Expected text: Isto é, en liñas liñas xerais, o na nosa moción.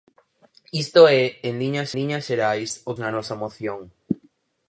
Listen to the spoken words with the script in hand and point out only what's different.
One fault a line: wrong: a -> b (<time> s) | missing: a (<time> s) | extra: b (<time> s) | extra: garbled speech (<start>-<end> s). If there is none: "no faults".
no faults